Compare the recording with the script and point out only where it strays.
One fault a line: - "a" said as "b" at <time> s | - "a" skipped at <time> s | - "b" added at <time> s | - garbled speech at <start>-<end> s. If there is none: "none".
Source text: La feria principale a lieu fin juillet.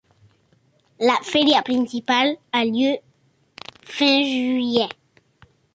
none